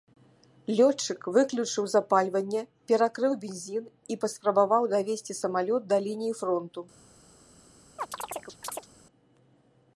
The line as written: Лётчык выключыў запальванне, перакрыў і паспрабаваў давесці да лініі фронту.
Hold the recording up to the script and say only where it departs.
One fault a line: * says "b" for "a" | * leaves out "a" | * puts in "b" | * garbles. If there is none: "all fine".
* puts in "бензін"
* puts in "самалёт"